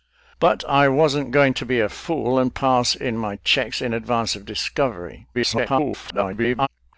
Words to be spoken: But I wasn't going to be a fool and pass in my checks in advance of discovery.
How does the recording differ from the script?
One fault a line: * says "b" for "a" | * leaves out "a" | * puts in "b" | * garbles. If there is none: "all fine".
* garbles